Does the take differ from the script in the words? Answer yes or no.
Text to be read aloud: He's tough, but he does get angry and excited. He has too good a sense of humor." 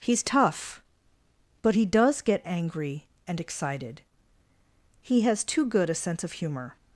no